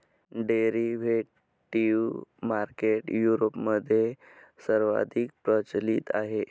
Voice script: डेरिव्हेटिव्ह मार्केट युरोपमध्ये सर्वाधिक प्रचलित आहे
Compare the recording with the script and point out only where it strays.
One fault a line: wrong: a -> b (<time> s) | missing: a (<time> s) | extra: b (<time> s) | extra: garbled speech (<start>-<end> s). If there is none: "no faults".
no faults